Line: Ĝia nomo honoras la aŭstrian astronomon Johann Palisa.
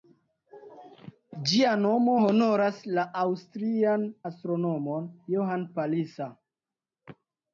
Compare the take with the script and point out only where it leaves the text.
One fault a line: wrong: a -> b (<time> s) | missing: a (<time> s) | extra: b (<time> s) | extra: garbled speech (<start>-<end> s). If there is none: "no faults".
no faults